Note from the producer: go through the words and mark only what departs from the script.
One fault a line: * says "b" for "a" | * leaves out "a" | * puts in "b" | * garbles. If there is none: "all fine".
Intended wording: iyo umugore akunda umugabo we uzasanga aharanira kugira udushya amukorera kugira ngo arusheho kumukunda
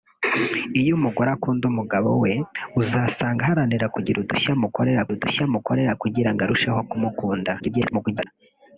* puts in "udushya amukorera"
* garbles